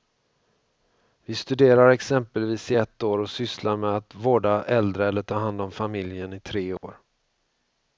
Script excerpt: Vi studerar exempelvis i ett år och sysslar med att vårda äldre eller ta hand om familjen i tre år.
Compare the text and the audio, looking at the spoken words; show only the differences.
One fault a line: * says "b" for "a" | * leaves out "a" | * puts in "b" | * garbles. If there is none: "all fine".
all fine